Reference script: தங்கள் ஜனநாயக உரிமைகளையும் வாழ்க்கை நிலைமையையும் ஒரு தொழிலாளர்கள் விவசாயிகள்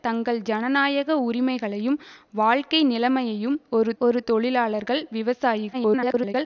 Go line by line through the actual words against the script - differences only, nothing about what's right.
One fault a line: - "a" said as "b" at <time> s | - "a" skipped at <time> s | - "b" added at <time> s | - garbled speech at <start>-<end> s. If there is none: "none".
- "ஒரு" added at 4.0 s
- garbled speech at 5.7-6.3 s